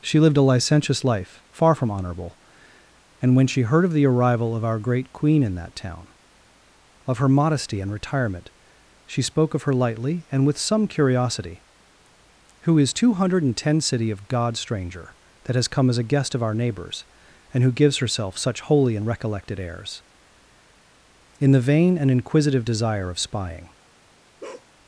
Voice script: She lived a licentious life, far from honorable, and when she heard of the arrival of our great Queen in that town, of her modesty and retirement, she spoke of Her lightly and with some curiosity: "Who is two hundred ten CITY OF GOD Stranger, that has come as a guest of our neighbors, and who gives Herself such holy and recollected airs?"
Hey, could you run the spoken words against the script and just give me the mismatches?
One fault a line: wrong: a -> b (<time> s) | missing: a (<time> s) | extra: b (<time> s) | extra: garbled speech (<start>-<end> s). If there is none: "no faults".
extra: In the vain and inquisitive desire of spying (21.4 s)